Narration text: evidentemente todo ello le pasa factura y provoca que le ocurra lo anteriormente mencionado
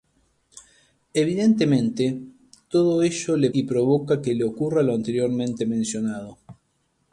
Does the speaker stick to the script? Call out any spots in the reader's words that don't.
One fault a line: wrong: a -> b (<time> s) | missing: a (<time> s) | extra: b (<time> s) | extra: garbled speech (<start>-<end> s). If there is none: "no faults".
missing: pasa factura (3.5 s)